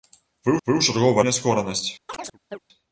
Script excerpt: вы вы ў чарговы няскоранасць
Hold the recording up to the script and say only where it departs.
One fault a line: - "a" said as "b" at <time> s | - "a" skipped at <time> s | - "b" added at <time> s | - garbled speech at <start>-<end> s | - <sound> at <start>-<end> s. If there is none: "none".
- chirp at 2.1-2.6 s